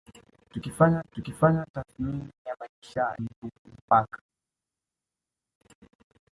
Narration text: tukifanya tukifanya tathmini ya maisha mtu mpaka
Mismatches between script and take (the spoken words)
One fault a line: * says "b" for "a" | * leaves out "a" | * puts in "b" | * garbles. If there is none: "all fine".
all fine